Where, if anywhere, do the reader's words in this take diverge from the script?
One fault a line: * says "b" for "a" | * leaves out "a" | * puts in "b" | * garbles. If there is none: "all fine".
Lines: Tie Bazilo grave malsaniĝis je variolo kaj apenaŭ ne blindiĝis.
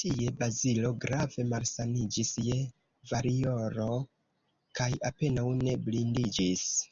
all fine